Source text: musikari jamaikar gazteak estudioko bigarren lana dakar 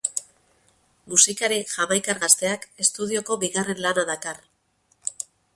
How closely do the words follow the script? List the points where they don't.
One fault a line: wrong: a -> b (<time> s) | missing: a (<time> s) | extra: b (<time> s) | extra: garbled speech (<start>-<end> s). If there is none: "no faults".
no faults